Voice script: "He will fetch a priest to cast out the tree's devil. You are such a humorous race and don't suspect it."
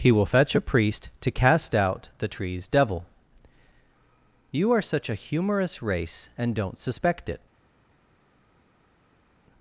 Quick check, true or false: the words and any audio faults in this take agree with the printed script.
true